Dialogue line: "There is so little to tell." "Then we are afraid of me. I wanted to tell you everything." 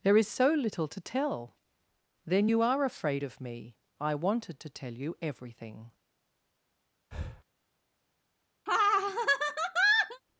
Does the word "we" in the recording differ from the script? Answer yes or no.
yes